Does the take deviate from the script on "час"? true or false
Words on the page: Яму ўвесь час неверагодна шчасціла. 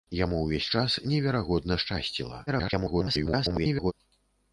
false